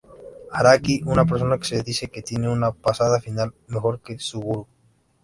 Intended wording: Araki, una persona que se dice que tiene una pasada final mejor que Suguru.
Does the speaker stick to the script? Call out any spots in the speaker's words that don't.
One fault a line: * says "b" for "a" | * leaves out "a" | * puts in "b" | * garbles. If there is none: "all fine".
all fine